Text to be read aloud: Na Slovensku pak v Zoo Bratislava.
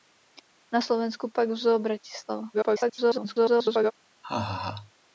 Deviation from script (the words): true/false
true